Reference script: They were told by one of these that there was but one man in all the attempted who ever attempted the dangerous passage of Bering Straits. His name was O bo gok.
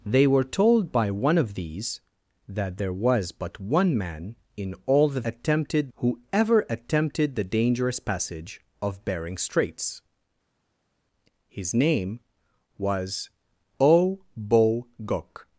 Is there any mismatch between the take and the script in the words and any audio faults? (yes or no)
no